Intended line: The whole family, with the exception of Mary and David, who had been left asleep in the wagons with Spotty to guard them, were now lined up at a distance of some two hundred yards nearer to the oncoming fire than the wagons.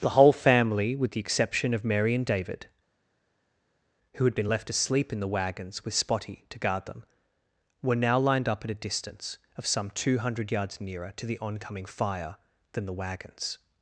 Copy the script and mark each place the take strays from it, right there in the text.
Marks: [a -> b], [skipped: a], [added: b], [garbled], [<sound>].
The whole family, with the exception of Mary and David, who had been left asleep in the wagons with Spotty to guard them, were now lined up at a distance of some two hundred yards nearer to the oncoming fire than the wagons.